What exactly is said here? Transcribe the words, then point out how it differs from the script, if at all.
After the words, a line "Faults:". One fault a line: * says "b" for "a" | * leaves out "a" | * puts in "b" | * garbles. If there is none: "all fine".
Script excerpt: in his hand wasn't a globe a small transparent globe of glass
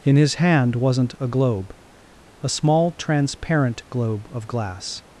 in his hand wasn't a globe a small transparent globe of glass
Faults:
all fine